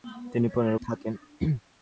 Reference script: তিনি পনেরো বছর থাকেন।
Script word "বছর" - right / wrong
wrong